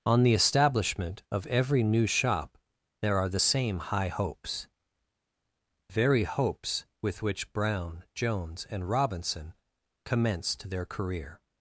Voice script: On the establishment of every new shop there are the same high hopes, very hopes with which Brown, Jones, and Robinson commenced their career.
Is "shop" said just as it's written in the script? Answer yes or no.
yes